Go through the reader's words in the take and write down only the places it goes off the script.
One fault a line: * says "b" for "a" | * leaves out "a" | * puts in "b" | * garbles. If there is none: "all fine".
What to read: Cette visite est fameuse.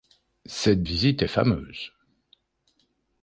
all fine